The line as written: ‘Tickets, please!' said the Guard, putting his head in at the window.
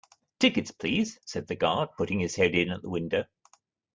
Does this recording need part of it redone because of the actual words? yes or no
no